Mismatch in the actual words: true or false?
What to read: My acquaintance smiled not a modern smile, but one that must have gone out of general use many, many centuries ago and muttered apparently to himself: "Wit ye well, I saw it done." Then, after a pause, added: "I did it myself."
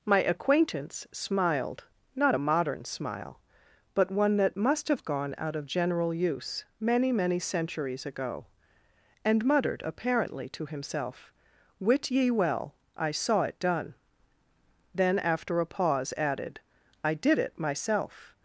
false